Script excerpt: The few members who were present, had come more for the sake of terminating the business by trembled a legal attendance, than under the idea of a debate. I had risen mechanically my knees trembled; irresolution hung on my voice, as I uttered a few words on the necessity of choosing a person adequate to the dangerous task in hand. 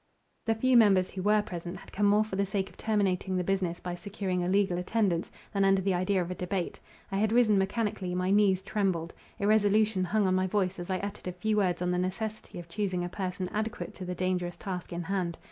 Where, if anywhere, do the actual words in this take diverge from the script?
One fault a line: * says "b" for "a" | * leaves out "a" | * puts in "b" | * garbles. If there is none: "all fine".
* says "securing" for "trembled"